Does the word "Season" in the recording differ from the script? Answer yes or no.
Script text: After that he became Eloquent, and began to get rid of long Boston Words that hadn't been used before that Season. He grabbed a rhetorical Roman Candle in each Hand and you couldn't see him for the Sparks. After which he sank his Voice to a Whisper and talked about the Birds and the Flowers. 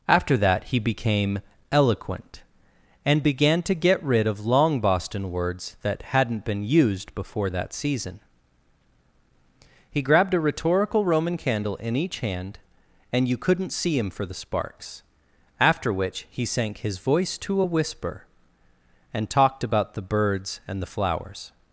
no